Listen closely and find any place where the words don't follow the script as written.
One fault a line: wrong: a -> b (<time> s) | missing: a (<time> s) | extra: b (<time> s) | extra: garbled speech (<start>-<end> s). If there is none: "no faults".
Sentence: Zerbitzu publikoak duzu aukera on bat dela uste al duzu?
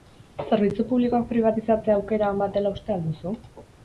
wrong: duzu -> pribatizatzea (1.3 s)